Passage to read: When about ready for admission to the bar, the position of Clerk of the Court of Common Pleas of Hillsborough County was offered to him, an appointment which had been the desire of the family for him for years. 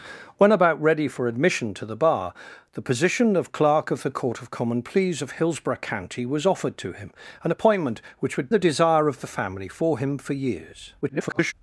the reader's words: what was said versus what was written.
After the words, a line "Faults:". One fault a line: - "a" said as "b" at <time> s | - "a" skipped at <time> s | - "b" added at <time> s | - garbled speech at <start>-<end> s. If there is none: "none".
When about ready for admission to the bar, the position of Clerk of the Court of Common Pleas of Hillsborough County was offered to him, an appointment which had the desire of the family for him for years. [garbled]
Faults:
- "been" skipped at 8.5 s
- garbled speech at 11.0-11.5 s